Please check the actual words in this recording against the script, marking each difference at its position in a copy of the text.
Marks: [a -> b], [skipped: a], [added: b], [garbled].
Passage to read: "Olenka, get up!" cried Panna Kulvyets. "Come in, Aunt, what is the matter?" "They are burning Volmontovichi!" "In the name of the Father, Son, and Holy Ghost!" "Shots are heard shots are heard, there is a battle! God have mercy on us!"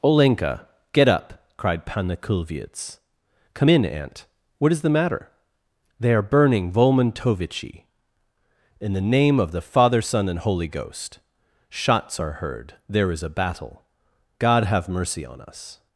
"Olenka, get up!" cried Panna Kulvyets. "Come in, Aunt, what is the matter?" "They are burning Volmontovichi!" "In the name of the Father, Son, and Holy Ghost!" "Shots are heard [skipped: shots are heard,] there is a battle! God have mercy on us!"